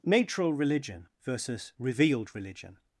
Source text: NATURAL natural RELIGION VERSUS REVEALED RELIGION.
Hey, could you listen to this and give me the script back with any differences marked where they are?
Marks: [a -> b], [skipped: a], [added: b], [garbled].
NATURAL [skipped: natural] RELIGION VERSUS REVEALED RELIGION.